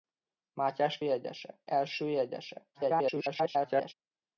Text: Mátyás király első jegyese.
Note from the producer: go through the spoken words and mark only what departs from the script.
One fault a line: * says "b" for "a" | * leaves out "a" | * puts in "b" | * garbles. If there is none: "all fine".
* says "jegyese" for "király"
* garbles